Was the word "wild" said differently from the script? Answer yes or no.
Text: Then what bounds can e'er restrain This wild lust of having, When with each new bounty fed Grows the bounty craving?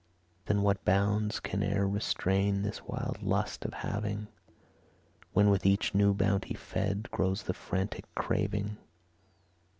no